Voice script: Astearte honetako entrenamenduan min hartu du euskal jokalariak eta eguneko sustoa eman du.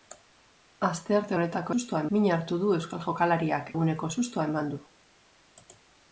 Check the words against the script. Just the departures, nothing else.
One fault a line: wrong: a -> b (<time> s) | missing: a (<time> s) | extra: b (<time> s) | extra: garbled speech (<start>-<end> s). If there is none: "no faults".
wrong: entrenamenduan -> sustoa (1.7 s)
missing: eta (3.7 s)